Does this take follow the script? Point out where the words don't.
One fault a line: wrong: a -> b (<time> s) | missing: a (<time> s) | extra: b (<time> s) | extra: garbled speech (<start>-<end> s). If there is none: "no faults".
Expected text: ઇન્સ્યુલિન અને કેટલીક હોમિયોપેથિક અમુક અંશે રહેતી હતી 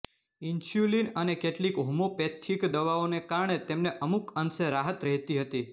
extra: દવાઓને કારણે તેમને (2.7 s)
extra: રાહત (4.7 s)